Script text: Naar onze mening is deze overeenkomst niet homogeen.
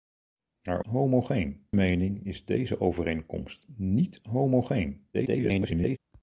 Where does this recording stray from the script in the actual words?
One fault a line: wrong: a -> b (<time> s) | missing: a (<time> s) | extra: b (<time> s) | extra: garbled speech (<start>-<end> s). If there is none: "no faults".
wrong: onze -> homogeen (0.8 s)
extra: garbled speech (5.1-6.0 s)